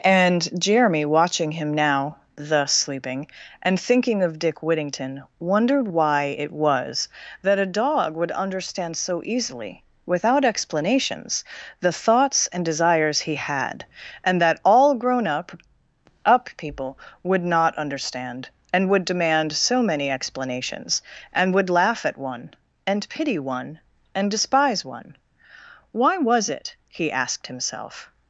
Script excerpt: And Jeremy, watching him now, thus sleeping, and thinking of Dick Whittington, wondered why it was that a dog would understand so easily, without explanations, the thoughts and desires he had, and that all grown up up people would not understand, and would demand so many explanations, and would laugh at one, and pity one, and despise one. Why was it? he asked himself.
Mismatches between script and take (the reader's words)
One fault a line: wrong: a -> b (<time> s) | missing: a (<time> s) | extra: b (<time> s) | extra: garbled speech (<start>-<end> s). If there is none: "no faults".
no faults